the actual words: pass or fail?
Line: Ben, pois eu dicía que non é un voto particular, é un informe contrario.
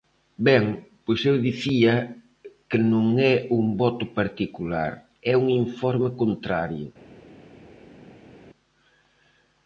pass